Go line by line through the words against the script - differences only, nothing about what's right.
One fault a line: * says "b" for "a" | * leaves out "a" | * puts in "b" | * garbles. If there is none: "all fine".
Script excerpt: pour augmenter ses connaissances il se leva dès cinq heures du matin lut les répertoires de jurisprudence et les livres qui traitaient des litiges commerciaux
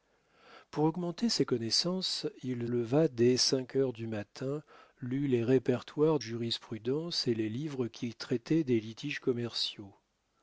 * leaves out "se"
* leaves out "de"